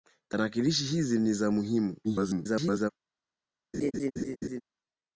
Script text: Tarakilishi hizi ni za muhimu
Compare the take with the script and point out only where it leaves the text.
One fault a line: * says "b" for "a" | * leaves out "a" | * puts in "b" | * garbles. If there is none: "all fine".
* garbles